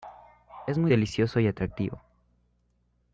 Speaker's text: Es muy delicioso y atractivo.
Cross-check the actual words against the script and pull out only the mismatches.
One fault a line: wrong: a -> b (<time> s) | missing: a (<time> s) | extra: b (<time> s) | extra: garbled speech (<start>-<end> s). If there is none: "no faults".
no faults